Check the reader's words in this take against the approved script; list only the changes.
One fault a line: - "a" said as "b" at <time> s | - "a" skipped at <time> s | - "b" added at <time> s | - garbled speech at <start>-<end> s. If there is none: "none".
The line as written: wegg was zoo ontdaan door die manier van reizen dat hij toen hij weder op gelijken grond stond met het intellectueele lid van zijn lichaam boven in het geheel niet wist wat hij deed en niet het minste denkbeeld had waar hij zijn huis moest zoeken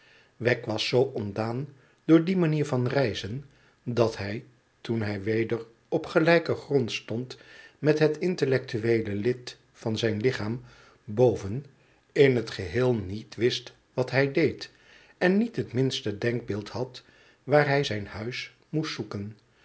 none